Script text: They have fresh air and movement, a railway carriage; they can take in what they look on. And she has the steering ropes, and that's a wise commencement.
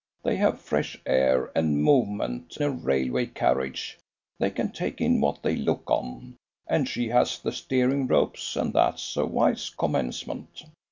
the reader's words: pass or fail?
pass